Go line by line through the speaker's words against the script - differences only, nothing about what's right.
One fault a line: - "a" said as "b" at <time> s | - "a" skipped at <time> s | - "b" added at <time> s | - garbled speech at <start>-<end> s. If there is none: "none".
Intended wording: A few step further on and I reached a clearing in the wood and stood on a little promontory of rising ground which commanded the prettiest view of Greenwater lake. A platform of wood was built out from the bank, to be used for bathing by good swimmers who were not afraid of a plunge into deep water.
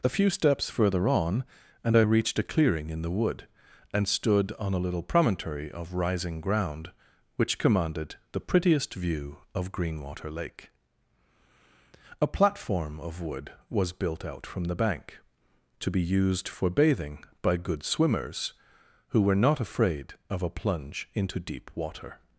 - "step" said as "steps" at 0.3 s